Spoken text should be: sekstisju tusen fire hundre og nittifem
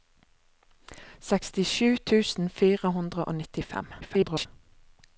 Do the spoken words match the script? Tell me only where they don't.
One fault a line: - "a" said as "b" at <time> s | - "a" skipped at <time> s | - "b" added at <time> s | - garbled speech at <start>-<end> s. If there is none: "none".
- garbled speech at 4.0-4.5 s